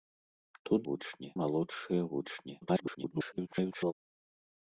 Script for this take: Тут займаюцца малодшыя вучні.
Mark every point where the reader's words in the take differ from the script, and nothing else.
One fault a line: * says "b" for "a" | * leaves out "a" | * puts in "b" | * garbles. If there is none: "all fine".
* says "вучні" for "займаюцца"
* garbles